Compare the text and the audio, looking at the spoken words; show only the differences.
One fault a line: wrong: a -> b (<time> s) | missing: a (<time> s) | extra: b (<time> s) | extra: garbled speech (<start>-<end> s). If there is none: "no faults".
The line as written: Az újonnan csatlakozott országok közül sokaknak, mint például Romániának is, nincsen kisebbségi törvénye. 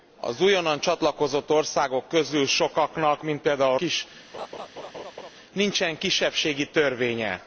missing: Romániának (3.8 s)